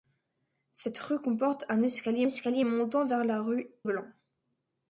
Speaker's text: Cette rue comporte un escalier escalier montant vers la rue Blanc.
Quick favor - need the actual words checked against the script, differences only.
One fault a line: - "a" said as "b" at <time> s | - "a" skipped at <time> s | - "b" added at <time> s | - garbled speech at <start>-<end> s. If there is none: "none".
none